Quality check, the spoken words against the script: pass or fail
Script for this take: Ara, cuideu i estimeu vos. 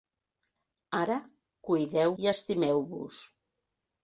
pass